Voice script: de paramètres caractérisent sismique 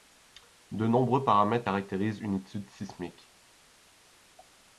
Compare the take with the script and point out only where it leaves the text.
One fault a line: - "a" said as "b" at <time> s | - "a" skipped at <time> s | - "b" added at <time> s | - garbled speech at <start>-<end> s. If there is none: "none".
- "nombreux" added at 0.9 s
- "une étude" added at 2.2 s